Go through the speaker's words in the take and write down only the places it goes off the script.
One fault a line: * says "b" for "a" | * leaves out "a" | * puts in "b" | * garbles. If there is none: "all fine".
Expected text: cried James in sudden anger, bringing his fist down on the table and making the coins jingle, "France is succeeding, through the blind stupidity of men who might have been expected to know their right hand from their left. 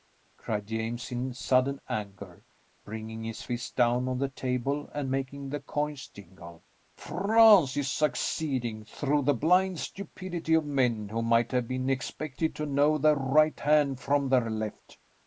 all fine